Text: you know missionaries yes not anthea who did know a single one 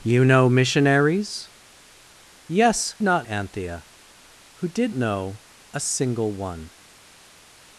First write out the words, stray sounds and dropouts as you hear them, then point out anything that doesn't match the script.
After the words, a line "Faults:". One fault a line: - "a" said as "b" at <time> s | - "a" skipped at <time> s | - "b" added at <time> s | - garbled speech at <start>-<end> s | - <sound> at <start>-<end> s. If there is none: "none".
you know missionaries yes not anthea who did know a single one
Faults:
none